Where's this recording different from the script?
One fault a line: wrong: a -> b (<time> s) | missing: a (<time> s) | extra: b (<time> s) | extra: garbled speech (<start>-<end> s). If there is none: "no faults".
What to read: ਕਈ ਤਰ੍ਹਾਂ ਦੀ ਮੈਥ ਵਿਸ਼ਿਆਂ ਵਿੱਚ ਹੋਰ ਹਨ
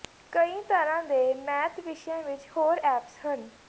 wrong: ਦੀ -> ਦੇ (1.0 s)
extra: ਐਪਸ (2.8 s)